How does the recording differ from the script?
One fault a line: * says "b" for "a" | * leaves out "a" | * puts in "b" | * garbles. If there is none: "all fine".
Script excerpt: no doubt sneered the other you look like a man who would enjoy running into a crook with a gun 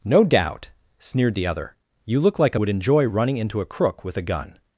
* leaves out "man who"